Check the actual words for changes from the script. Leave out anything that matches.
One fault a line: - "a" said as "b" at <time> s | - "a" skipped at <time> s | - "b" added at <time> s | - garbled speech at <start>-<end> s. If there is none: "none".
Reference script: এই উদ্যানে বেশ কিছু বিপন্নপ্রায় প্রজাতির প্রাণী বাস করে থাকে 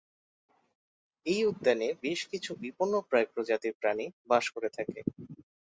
none